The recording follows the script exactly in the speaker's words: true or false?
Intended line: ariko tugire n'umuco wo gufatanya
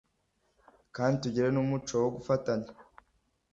false